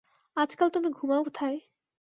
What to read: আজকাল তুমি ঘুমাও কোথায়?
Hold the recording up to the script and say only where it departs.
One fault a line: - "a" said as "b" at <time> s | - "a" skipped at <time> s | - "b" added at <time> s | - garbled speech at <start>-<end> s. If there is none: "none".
none